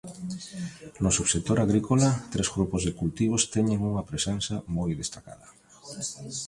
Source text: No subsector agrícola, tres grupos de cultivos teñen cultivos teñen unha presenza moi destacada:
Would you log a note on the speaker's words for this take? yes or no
yes